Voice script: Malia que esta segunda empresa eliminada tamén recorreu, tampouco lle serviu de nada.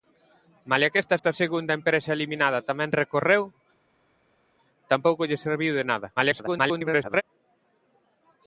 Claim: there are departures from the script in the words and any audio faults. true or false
true